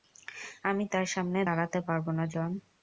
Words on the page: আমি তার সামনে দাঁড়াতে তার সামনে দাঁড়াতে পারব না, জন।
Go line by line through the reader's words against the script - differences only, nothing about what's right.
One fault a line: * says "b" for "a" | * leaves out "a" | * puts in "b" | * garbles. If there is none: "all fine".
* leaves out "তার সামনে দাঁড়াতে"